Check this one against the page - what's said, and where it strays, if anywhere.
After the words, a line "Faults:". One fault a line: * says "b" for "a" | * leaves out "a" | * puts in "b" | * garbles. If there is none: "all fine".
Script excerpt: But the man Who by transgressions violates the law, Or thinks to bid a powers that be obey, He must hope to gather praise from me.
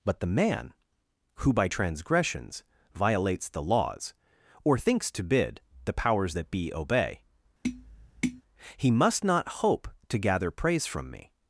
But the man Who by transgressions violates the laws, Or thinks to bid the powers that be obey, He must not hope to gather praise from me.
Faults:
* says "laws" for "law"
* says "the" for "a"
* puts in "not"